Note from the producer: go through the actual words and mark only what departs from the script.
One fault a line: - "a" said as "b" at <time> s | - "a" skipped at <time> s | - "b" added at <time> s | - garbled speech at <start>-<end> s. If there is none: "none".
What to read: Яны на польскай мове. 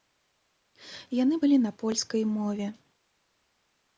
- "былі" added at 1.4 s